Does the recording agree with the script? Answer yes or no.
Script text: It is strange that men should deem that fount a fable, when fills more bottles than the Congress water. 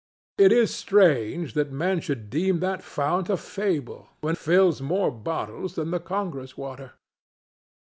yes